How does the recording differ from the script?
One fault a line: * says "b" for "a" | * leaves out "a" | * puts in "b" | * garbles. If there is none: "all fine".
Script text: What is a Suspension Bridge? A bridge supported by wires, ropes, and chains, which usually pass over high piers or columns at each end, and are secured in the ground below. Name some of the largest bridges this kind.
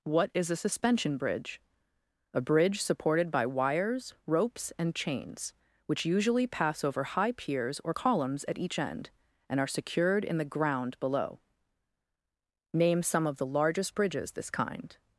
all fine